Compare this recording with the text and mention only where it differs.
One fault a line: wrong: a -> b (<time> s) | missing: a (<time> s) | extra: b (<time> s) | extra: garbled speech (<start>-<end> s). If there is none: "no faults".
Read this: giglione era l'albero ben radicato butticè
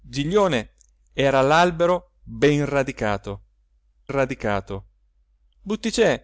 extra: radicato (4.1 s)